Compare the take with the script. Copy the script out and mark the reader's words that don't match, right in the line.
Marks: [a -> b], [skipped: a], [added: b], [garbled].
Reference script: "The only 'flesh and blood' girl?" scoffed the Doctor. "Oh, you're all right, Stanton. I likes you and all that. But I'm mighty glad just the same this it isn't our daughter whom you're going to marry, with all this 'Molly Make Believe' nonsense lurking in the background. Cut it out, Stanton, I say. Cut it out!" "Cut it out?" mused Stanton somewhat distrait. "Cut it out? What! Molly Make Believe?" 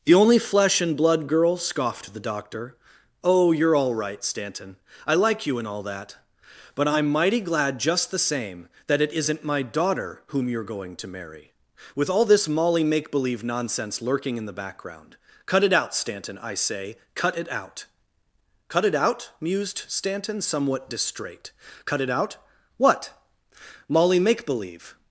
"The only 'flesh and blood' girl?" scoffed the Doctor. "Oh, you're all right, Stanton. I [likes -> like] you and all that. But I'm mighty glad just the same [this -> that] it isn't [our -> my] daughter whom you're going to marry, with all this 'Molly Make Believe' nonsense lurking in the background. Cut it out, Stanton, I say. Cut it out!" "Cut it out?" mused Stanton somewhat distrait. "Cut it out? What! Molly Make Believe?"